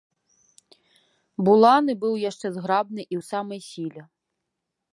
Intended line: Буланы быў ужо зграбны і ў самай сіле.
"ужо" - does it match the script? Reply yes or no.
no